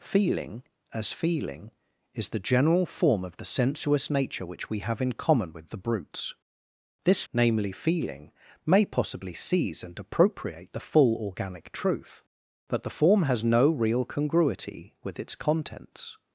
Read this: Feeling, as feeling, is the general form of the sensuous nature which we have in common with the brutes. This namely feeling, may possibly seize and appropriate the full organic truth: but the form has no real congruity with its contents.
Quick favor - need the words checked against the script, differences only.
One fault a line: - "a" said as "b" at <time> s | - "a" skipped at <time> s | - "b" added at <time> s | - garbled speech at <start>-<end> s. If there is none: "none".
none